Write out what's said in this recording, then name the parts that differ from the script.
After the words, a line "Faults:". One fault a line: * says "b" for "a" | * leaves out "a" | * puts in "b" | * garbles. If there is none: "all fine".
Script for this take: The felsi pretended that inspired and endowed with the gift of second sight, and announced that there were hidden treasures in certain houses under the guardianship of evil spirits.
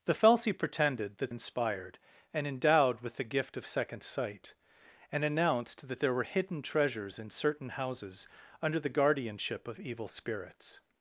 The felsi pretended that inspired and endowed with the gift of second sight, and announced that there were hidden treasures in certain houses under the guardianship of evil spirits.
Faults:
all fine